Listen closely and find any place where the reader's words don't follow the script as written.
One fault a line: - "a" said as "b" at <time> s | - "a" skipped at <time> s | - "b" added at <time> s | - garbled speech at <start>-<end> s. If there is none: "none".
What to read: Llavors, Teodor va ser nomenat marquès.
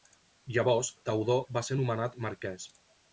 none